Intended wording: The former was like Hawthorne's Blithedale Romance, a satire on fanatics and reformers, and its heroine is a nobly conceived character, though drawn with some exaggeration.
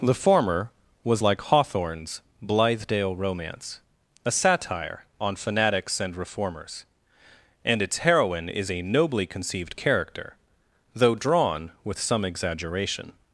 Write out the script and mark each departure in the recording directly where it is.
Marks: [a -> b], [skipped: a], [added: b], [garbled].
The former was like Hawthorne's Blithedale Romance, a satire on fanatics and reformers, and its heroine is a nobly conceived character, though drawn with some exaggeration.